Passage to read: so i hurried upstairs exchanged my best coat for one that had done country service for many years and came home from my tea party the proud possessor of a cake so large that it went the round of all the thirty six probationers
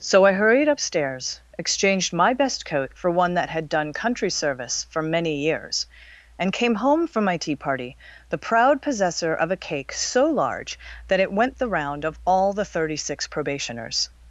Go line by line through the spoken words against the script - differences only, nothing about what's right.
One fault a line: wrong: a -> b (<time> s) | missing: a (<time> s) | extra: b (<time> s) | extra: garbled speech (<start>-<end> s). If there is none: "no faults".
no faults